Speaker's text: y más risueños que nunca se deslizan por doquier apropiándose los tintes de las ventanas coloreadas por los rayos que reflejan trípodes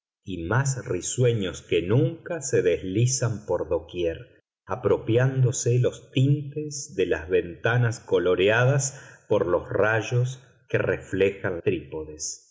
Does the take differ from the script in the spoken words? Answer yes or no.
no